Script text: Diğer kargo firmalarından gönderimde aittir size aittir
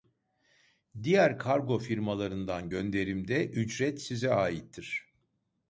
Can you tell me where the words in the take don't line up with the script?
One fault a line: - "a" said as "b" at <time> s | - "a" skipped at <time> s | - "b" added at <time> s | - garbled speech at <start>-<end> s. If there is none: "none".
- "aittir" said as "ücret" at 3.5 s